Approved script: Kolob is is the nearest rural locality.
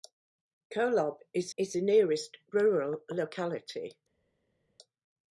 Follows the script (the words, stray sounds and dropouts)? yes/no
yes